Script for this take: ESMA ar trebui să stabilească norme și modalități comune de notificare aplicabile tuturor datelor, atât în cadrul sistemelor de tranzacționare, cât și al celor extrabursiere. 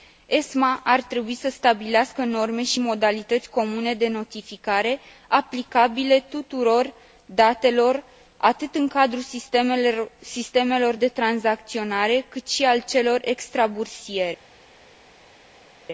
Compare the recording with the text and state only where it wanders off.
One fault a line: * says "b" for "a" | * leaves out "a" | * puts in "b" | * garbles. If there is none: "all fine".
all fine